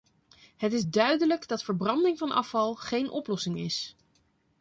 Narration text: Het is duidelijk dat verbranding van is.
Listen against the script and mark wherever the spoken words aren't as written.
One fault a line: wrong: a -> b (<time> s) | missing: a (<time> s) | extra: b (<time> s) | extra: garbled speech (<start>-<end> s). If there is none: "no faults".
extra: afval geen oplossing (2.3 s)